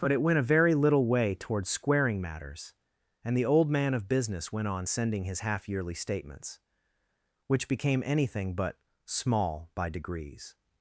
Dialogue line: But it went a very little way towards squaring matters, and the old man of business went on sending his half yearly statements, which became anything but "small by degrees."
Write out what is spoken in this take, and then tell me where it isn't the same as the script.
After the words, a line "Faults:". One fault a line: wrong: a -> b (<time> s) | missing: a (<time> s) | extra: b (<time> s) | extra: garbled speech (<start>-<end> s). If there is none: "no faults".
But it went a very little way towards squaring matters, and the old man of business went on sending his half yearly statements, which became anything but "small by degrees."
Faults:
no faults